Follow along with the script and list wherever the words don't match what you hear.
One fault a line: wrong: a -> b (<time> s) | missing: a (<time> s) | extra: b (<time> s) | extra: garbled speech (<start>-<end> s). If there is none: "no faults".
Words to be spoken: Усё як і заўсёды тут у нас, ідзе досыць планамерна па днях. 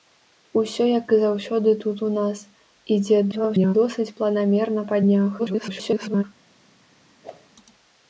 extra: garbled speech (3.3-3.8 s)
extra: garbled speech (5.4-6.2 s)